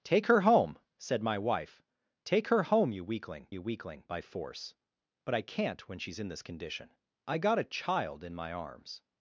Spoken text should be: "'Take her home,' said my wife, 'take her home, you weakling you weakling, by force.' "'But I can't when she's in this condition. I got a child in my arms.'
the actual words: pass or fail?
pass